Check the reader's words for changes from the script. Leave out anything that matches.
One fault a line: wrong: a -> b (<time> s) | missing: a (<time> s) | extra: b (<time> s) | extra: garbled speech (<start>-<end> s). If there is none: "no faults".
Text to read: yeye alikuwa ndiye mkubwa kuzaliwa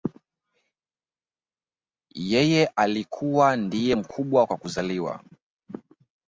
extra: kwa (4.4 s)